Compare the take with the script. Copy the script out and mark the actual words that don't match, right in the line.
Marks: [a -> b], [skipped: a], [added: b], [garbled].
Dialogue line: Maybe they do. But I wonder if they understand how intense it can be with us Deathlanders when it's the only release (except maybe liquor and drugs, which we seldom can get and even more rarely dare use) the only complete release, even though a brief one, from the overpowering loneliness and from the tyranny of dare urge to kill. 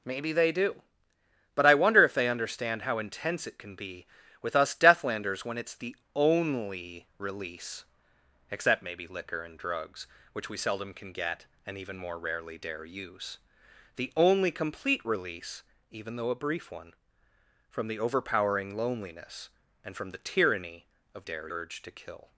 Maybe they do. But I wonder if they understand how intense it can be with us Deathlanders when it's the only release (except maybe liquor and drugs, which we seldom can get and even more rarely dare use) the only complete release, even though a brief one, from the overpowering loneliness and from the tyranny of dare urge to kill.